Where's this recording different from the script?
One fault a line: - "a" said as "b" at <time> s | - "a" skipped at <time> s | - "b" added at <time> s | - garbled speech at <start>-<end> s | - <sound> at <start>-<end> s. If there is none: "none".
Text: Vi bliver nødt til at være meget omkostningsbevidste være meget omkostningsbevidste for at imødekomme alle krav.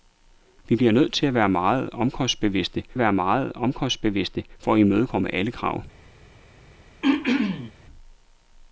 - throat clearing at 7.0-7.7 s